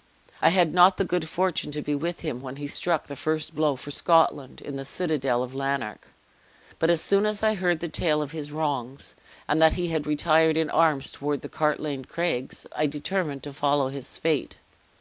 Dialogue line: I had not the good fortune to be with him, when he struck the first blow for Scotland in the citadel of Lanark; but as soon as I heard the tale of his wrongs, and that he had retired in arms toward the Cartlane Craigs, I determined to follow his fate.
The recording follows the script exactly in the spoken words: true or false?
true